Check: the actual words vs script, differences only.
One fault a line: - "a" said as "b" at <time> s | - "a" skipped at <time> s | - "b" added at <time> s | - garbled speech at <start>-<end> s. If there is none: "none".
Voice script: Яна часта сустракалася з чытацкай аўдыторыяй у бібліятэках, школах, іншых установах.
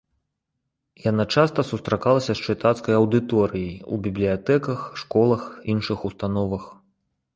none